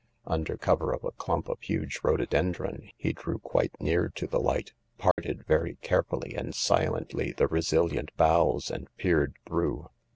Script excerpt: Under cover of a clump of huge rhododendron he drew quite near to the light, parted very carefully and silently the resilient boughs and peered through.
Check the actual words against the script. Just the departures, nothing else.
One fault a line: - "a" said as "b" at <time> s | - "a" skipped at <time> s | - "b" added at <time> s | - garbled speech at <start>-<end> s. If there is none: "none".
none